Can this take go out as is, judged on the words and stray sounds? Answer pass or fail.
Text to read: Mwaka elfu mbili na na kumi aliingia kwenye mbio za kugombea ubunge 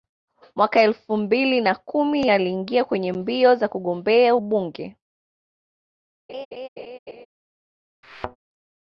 fail